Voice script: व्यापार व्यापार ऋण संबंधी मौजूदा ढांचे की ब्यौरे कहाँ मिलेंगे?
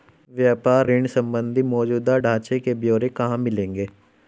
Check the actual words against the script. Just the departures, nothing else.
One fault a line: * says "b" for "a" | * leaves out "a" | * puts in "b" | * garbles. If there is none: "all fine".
* leaves out "व्यापार"
* says "के" for "की"